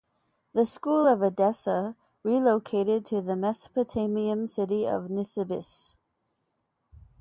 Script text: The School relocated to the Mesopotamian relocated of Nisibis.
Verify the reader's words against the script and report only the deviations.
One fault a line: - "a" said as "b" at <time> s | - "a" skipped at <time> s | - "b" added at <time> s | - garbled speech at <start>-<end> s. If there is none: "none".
- "of Edessa" added at 1.1 s
- "relocated" said as "city" at 4.5 s